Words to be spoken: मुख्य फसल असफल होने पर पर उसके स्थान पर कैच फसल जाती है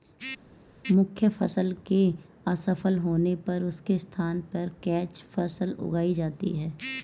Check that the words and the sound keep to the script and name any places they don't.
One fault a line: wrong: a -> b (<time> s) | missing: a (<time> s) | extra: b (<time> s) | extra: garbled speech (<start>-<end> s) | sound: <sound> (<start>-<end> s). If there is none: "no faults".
extra: के (1.9 s)
missing: पर (3.6 s)
extra: उगाई (5.8 s)